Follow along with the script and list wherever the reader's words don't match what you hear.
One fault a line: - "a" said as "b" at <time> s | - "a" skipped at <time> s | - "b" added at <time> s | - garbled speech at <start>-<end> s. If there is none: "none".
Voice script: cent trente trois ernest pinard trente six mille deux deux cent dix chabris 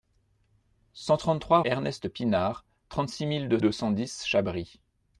none